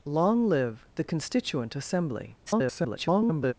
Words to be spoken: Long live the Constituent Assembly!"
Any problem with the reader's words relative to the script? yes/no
yes